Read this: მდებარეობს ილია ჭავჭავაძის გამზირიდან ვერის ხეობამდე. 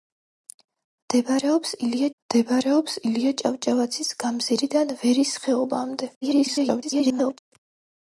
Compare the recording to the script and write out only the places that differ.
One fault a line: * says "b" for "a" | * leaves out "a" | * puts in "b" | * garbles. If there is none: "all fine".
* puts in "მდებარეობს ილია"
* garbles